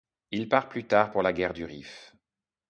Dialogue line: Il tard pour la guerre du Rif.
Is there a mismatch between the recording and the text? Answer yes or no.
yes